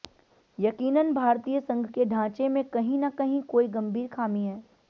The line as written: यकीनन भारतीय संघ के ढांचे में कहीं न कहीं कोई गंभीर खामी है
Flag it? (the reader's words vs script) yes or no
no